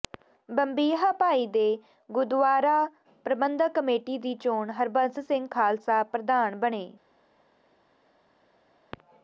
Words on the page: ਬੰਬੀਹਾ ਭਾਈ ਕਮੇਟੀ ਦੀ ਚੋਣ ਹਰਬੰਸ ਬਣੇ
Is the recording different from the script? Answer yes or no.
yes